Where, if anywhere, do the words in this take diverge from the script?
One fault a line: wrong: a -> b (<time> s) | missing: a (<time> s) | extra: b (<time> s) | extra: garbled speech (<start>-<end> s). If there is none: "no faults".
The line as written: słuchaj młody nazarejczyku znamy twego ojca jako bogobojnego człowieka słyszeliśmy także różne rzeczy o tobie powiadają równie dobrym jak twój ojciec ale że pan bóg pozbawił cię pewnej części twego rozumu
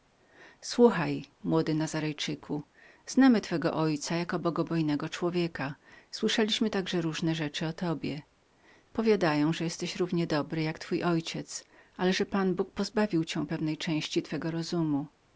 extra: że jesteś (9.5 s)